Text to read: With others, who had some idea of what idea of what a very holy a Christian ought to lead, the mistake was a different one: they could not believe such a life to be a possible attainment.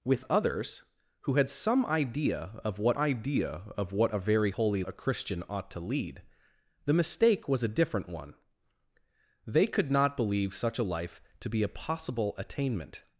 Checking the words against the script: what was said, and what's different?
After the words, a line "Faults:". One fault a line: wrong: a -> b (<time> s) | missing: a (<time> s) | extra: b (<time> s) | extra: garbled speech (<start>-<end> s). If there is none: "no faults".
With others, who had some idea of what idea of what a very holy a Christian ought to lead, the mistake was a different one: they could not believe such a life to be a possible attainment.
Faults:
no faults